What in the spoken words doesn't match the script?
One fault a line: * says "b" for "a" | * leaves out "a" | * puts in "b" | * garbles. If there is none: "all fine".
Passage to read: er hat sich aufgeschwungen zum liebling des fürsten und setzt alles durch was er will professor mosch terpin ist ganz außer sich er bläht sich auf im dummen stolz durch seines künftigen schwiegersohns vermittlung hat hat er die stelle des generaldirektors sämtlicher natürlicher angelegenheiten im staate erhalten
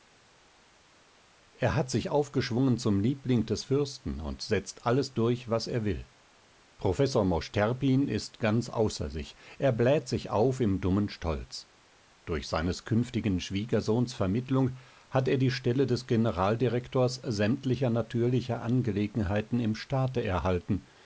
* leaves out "hat"